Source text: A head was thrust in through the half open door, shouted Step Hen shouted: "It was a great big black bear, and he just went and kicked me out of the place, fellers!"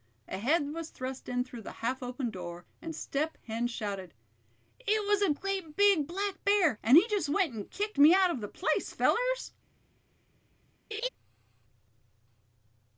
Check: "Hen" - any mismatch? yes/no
no